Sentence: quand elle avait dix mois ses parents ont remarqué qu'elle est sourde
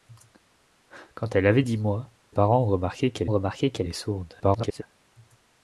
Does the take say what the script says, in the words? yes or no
no